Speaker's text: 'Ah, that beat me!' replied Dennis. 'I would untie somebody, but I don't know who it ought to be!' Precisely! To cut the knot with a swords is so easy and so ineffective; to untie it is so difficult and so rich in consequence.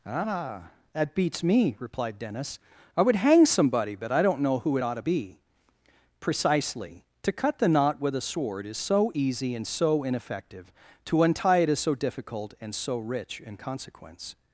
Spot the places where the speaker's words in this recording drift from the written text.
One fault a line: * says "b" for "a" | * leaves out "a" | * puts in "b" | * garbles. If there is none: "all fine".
* says "beats" for "beat"
* says "hang" for "untie"
* says "sword" for "swords"